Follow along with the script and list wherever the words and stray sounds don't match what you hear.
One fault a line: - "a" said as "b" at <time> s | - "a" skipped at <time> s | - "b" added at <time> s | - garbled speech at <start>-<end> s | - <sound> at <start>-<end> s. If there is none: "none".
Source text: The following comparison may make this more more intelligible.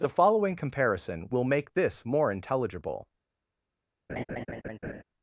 - "may" said as "will" at 1.3 s
- "more" skipped at 2.3 s
- laugh at 4.1-5.0 s